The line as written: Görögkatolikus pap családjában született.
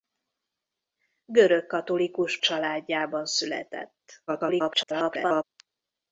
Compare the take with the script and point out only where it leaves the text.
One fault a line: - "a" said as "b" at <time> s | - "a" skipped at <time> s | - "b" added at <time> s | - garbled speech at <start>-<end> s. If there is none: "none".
- "pap" skipped at 2.4 s
- garbled speech at 4.3-5.4 s